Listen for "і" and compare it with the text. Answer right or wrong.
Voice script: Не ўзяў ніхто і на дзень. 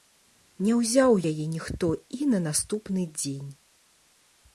right